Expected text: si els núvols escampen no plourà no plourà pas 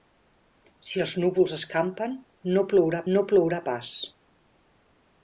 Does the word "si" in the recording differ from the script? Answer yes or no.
no